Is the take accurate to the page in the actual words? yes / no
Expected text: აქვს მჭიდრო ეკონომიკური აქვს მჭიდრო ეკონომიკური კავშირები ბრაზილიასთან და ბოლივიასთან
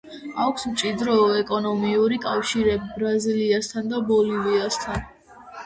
no